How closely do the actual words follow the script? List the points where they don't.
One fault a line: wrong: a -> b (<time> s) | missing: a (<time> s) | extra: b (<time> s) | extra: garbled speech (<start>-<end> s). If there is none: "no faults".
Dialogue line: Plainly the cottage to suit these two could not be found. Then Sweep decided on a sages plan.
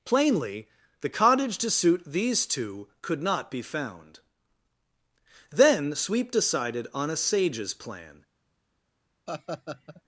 no faults